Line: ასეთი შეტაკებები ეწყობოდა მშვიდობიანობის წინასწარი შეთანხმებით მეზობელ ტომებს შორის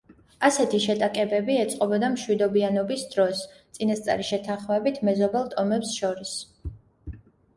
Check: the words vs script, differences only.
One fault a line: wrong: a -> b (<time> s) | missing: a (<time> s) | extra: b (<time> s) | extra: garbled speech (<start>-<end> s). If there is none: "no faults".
extra: დროს (3.1 s)